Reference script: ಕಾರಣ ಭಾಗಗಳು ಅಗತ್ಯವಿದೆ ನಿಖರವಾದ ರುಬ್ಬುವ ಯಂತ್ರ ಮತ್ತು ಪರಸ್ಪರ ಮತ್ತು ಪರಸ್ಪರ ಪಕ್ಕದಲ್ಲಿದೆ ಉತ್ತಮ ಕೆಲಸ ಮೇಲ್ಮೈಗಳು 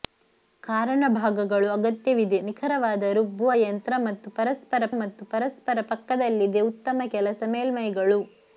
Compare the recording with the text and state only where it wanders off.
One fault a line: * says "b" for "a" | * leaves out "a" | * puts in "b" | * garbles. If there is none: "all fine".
all fine